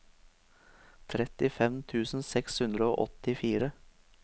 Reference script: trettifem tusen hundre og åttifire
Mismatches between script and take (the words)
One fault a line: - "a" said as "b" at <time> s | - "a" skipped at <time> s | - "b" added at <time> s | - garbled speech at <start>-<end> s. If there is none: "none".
- "seks" added at 2.3 s